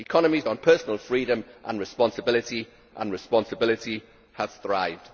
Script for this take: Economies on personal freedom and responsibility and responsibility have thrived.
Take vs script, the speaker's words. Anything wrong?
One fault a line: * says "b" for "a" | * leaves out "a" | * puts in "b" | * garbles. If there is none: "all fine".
all fine